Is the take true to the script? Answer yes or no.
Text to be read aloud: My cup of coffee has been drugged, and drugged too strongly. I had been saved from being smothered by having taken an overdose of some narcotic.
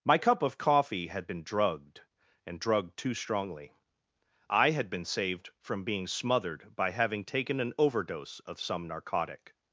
no